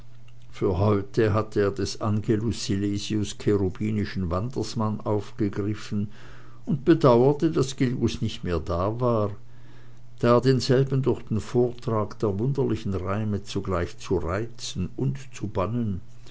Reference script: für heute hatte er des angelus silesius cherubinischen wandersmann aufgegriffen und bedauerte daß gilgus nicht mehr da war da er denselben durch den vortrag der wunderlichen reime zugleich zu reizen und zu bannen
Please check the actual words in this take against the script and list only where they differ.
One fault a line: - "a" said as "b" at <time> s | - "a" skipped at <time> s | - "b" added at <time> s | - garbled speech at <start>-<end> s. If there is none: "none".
none